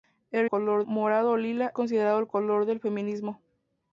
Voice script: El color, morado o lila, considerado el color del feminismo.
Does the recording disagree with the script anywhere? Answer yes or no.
no